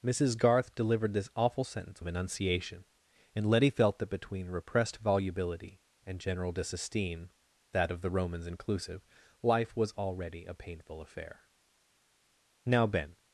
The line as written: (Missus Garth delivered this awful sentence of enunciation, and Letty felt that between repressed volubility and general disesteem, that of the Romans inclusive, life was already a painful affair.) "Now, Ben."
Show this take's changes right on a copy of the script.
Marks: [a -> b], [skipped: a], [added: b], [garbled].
(Missus Garth delivered this awful sentence of enunciation, and Letty felt that between repressed volubility and general disesteem, that of the Romans inclusive, life was already a painful affair.) "Now, Ben."